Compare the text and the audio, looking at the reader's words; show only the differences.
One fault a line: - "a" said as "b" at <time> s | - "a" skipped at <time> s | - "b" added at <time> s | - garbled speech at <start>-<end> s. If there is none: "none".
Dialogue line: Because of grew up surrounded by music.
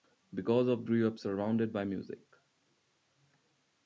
none